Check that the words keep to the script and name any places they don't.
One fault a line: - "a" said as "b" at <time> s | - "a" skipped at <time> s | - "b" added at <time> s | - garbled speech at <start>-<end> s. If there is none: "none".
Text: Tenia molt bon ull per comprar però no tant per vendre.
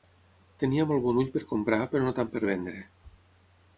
none